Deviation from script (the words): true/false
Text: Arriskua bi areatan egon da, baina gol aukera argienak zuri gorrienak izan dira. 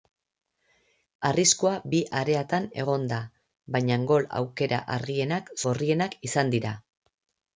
true